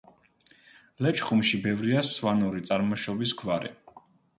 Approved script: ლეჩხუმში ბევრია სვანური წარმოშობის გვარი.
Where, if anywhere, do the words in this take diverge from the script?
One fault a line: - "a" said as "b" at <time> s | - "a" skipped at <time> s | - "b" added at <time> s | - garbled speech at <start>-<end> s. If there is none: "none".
none